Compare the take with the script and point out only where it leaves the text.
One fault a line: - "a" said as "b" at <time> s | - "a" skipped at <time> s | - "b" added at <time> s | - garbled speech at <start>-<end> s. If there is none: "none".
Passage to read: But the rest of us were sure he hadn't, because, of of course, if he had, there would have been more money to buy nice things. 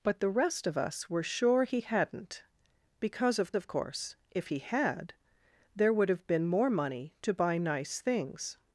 none